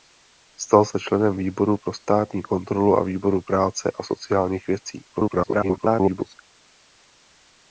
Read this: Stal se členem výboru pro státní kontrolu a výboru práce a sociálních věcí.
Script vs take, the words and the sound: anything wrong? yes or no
yes